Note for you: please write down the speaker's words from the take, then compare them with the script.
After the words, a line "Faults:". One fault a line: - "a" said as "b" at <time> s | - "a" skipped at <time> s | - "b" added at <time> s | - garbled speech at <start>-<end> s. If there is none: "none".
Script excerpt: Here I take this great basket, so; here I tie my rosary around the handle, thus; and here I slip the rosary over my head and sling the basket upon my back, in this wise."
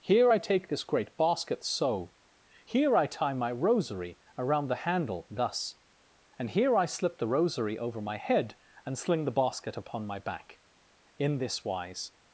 Here I take this great basket, so; here I tie my rosary around the handle, thus; and here I slip the rosary over my head and sling the basket upon my back, in this wise."
Faults:
none